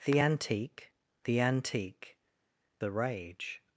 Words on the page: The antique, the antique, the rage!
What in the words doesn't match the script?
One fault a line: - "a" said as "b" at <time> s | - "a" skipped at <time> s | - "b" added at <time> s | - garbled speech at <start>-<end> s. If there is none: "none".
none